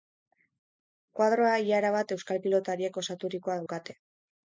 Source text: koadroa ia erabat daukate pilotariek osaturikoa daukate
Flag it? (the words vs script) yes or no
yes